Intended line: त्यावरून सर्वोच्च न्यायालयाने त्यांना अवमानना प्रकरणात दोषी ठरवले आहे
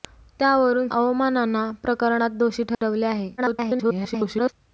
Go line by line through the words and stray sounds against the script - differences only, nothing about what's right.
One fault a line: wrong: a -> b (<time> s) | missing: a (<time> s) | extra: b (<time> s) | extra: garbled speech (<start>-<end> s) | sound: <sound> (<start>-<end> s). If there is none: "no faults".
missing: सर्वोच्च न्यायालयाने त्यांना (0.9 s)
sound: dropout (2.7-2.8 s)
extra: garbled speech (3.4-4.5 s)